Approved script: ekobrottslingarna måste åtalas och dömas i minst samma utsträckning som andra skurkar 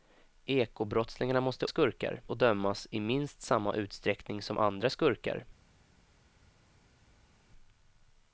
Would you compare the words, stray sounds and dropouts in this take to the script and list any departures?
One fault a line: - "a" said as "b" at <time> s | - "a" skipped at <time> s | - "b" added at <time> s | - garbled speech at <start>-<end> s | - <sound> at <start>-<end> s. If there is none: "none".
- "åtalas" said as "skurkar" at 1.7 s